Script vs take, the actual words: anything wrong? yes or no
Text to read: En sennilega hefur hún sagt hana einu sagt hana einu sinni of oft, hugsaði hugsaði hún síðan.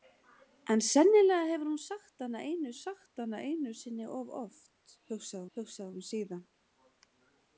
no